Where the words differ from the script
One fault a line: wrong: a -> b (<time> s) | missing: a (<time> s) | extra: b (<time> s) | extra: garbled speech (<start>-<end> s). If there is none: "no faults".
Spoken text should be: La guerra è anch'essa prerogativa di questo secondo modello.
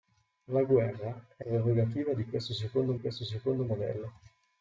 missing: anch'essa (1.4 s)
extra: questo secondo (3.0 s)